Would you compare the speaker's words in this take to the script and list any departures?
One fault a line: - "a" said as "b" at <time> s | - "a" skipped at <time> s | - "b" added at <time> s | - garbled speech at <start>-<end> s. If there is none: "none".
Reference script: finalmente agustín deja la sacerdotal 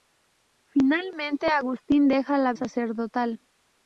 none